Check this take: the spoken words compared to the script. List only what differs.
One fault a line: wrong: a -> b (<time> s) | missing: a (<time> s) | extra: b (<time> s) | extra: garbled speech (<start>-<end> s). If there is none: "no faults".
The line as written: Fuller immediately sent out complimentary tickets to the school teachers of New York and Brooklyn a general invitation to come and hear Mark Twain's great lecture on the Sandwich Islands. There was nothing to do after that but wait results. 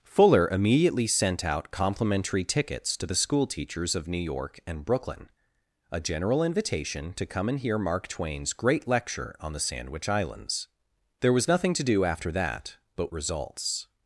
missing: wait (13.1 s)